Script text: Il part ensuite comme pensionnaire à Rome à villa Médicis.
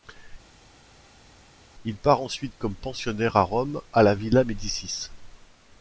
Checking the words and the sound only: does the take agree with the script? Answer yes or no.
no